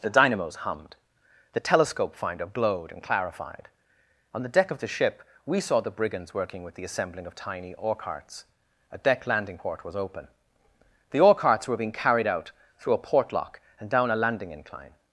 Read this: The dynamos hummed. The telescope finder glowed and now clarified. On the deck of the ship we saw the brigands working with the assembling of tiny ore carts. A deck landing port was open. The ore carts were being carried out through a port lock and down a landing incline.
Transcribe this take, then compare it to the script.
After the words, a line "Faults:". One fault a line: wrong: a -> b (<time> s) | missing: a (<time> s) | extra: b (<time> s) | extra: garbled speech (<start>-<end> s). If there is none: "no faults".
The dynamos hummed. The telescope finder glowed and clarified. On the deck of the ship we saw the brigands working with the assembling of tiny ore carts. A deck landing port was open. The ore carts were being carried out through a port lock and down a landing incline.
Faults:
missing: now (3.0 s)